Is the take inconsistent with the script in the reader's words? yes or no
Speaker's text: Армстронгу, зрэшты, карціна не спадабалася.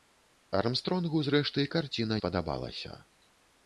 yes